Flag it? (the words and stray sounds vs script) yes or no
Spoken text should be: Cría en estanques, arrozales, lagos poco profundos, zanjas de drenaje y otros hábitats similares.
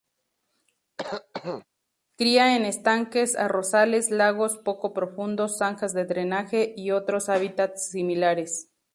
yes